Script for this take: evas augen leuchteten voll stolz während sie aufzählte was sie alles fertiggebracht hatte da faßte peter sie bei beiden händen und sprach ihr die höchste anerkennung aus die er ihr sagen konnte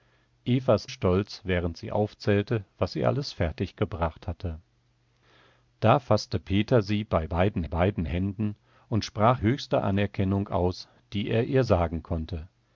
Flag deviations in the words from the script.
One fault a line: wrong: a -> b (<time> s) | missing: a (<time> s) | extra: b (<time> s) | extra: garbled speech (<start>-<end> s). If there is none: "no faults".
missing: augen leuchteten voll (0.9 s)
extra: beiden (7.7 s)
missing: ihr die (9.4 s)